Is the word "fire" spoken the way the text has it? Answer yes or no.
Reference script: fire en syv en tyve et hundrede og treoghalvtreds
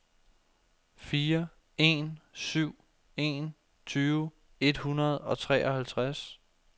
yes